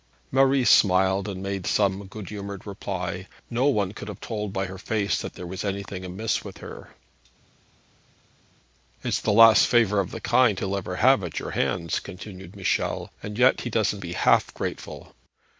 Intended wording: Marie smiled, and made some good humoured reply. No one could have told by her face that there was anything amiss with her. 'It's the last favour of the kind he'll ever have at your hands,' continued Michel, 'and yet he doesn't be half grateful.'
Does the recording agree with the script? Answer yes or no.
yes